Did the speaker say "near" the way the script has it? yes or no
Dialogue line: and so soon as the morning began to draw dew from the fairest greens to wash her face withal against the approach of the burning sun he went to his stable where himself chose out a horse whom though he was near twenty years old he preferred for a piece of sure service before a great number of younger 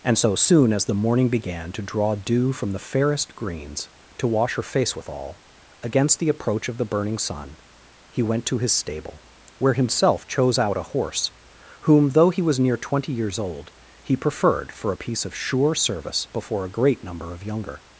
yes